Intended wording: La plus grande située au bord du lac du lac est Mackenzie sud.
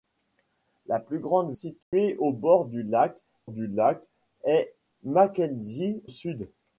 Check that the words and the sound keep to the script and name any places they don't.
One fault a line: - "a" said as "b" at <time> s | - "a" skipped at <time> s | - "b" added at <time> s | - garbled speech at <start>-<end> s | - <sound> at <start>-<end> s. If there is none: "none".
- dropout at 1.8-1.9 s